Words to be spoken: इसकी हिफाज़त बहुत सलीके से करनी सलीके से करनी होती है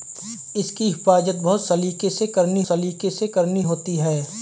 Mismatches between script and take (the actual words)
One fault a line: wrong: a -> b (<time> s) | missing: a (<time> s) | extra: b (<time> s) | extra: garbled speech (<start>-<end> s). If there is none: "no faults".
no faults